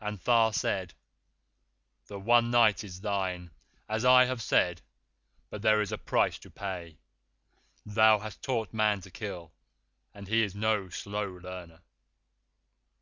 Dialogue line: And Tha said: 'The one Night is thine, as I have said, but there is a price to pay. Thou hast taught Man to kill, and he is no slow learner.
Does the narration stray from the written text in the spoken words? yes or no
no